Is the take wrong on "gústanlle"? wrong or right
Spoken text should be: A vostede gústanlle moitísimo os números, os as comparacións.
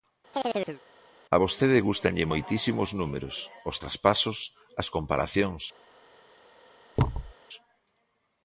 right